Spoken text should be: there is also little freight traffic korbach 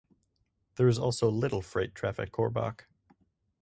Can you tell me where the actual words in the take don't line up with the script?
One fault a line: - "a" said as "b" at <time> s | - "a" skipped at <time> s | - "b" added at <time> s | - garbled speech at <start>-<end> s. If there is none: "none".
none